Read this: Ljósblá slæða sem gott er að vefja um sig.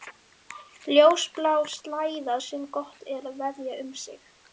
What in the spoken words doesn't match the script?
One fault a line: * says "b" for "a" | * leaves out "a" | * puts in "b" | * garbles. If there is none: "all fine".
all fine